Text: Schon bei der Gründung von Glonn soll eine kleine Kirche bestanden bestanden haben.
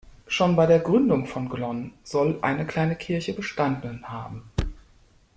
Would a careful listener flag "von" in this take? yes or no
no